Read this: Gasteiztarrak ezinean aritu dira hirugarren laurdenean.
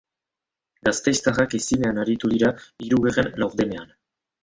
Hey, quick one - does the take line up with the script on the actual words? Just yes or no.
yes